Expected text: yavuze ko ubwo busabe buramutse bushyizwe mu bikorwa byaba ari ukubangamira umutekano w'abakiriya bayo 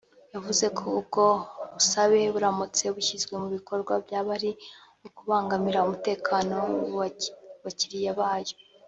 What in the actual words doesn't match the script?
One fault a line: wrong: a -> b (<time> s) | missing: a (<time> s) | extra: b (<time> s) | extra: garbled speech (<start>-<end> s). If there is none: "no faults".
no faults